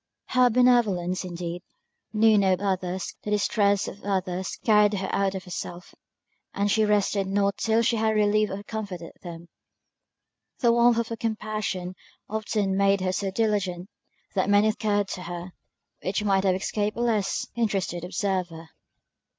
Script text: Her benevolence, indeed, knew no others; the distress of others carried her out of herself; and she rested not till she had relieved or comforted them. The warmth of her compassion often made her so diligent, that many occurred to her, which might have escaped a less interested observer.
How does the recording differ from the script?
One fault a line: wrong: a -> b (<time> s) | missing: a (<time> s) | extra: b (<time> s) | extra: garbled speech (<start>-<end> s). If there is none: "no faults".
no faults